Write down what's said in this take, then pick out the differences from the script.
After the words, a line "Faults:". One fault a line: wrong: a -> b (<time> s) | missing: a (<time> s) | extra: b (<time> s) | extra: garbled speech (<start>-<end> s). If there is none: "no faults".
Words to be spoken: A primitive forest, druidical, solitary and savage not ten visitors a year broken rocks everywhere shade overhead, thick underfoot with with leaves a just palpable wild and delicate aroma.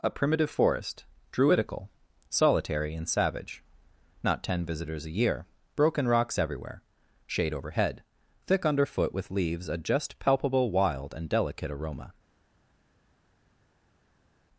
A primitive forest, druidical, solitary and savage not ten visitors a year broken rocks everywhere shade overhead, thick underfoot with leaves a just palpable wild and delicate aroma.
Faults:
missing: with (9.3 s)